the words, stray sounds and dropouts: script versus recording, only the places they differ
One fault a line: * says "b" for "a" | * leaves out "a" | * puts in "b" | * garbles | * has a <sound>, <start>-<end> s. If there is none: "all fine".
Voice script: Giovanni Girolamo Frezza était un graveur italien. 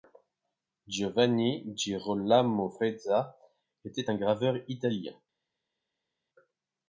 all fine